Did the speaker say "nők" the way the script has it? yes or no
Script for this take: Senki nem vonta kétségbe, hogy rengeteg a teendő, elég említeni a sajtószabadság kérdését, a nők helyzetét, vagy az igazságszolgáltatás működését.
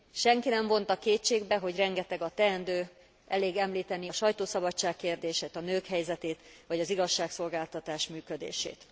yes